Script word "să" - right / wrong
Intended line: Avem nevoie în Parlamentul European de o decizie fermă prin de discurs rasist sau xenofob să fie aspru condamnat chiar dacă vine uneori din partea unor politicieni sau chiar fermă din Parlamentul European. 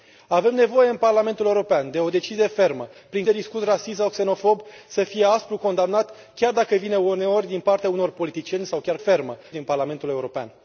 right